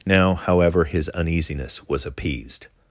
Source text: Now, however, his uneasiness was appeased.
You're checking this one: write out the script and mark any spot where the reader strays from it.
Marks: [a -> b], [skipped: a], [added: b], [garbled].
Now, however, his uneasiness was appeased.